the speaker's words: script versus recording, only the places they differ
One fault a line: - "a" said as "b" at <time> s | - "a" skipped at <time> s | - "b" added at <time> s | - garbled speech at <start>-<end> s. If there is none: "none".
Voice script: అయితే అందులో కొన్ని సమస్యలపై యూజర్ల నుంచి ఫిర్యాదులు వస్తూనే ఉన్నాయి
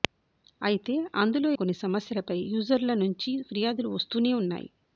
none